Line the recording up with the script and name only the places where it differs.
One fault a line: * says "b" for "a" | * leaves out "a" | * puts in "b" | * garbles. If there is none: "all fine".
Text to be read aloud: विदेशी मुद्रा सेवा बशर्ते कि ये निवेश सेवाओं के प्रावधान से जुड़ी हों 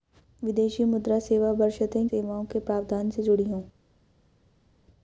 * leaves out "कि ये निवेश"